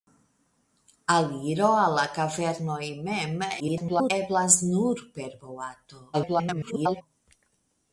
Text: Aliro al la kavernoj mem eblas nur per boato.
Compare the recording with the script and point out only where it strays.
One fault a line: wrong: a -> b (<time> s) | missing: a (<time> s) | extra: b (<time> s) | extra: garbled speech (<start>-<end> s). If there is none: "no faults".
extra: garbled speech (3.6-4.1 s)
extra: garbled speech (6.1-7.0 s)